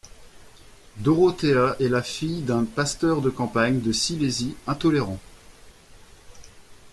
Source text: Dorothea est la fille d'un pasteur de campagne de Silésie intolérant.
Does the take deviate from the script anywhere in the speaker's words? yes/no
no